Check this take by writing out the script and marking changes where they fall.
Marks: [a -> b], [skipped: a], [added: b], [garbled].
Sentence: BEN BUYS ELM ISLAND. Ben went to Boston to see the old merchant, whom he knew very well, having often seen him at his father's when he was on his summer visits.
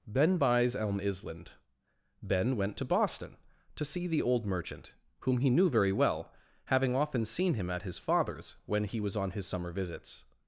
BEN BUYS ELM ISLAND. Ben went to Boston to see the old merchant, whom he knew very well, having often seen him at his father's when he was on his summer visits.